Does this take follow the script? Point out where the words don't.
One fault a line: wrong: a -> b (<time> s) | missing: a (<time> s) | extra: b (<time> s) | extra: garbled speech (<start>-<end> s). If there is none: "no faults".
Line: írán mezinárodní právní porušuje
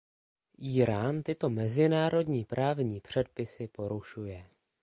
extra: tyto (1.2 s)
extra: předpisy (3.0 s)